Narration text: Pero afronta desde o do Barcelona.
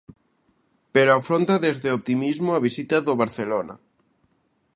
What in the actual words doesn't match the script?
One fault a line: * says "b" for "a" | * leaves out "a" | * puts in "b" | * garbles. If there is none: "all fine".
* puts in "optimismo a visita"